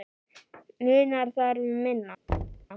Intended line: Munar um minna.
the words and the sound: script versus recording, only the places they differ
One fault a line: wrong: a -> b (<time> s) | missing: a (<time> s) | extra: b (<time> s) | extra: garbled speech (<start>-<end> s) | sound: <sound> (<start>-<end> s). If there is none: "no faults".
extra: þar (1.4 s)
sound: thud (2.3-2.7 s)